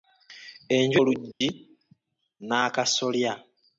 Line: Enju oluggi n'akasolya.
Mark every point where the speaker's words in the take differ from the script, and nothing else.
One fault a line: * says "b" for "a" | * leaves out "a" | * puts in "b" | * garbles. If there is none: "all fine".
all fine